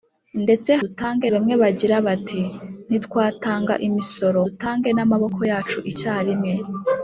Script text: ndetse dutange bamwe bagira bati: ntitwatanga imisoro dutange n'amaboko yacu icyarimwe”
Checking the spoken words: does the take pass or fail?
pass